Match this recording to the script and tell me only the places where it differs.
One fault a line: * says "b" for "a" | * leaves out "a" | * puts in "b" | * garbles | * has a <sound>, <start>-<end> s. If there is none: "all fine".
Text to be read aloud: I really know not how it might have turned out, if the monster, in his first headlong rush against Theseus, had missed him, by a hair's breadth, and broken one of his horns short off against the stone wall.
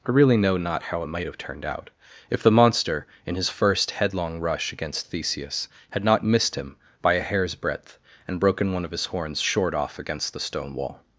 * puts in "not"